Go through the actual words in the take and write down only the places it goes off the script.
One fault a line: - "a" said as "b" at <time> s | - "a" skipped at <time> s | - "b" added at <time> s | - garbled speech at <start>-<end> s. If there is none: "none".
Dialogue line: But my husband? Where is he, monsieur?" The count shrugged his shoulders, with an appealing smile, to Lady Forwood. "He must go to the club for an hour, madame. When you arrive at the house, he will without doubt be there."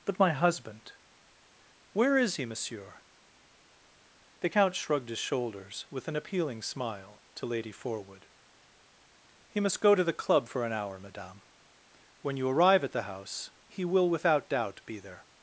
none